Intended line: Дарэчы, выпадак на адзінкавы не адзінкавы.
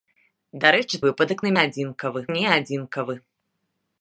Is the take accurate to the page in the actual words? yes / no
yes